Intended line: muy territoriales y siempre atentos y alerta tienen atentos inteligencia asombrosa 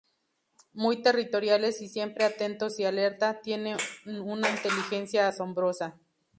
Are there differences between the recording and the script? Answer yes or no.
yes